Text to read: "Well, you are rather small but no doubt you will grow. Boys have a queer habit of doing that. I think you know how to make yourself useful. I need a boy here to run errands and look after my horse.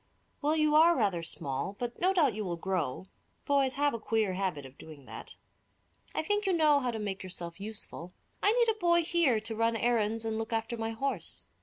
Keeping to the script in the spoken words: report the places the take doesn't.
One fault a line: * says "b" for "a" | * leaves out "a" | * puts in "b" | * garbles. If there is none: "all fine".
all fine